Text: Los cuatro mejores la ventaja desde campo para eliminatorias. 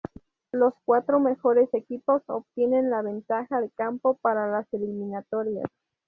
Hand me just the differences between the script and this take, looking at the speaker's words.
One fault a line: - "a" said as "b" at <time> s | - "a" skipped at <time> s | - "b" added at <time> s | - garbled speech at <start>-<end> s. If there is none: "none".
- "equipos obtienen" added at 1.7 s
- "desde" said as "de" at 3.6 s
- "las" added at 4.5 s